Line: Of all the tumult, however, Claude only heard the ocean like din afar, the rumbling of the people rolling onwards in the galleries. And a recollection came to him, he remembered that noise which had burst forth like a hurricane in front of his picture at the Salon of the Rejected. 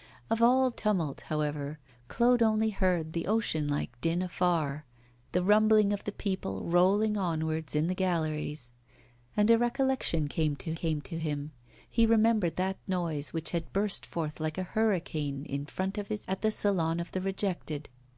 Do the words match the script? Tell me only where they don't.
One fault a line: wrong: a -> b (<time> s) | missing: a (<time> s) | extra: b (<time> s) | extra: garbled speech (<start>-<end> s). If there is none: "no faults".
missing: the (0.7 s)
extra: came to (10.7 s)
missing: picture (16.3 s)